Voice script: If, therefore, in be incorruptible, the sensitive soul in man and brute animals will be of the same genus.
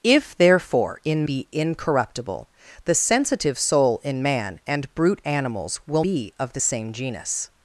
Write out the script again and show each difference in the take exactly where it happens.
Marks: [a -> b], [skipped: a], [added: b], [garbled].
If, therefore, in be incorruptible, the sensitive soul in man and brute animals will be of the same genus.